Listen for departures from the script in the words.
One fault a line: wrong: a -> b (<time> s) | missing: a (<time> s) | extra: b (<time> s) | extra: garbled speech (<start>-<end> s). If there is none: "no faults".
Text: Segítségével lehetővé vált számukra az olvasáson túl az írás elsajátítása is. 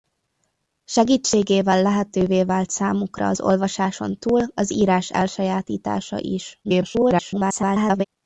extra: garbled speech (6.6-8.0 s)